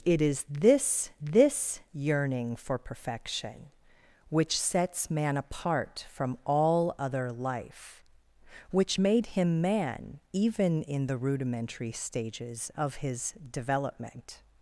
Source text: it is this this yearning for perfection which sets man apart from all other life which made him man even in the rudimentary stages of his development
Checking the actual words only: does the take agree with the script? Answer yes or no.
yes